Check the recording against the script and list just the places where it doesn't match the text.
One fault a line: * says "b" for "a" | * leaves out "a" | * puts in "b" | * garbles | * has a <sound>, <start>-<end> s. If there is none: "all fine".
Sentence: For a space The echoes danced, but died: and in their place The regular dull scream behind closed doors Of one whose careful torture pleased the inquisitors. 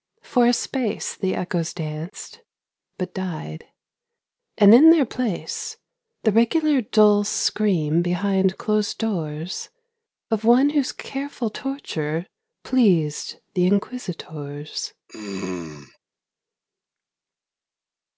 * has a throat clearing, 15.1-16.0 s